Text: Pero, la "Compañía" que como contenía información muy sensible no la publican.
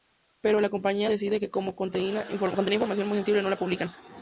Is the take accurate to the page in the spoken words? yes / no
no